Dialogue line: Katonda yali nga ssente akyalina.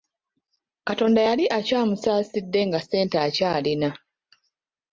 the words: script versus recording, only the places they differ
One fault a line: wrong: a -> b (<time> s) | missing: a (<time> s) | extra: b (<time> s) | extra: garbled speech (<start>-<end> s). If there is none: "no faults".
extra: akyamusaasidde (1.6 s)